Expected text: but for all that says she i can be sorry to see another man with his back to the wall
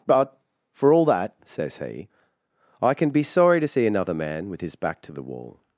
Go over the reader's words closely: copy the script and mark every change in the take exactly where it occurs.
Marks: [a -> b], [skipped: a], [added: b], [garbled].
but for all that says [she -> he] i can be sorry to see another man with his back to the wall